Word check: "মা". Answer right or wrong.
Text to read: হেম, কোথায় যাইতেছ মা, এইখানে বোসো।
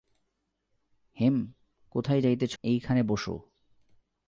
wrong